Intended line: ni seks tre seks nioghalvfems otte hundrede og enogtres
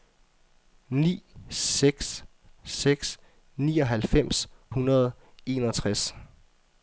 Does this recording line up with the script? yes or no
no